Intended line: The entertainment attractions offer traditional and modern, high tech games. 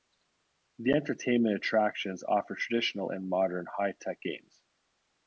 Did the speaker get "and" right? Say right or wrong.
right